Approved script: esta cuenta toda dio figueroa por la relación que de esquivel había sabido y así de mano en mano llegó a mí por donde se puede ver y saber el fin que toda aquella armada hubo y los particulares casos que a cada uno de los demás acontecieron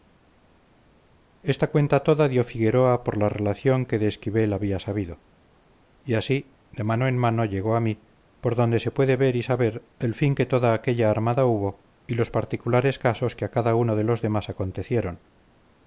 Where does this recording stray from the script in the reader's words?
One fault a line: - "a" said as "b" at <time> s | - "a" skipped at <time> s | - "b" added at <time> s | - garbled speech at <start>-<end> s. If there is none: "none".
none